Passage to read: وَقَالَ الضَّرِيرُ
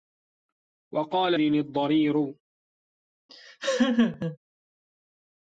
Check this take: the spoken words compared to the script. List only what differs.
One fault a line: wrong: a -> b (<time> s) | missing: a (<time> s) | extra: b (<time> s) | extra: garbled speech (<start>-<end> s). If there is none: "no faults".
no faults